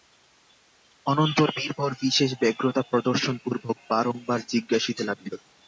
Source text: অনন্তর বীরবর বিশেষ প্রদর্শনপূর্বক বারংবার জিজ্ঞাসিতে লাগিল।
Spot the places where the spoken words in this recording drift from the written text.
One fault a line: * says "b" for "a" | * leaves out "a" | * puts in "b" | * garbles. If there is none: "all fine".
* puts in "ব্যগ্রতা"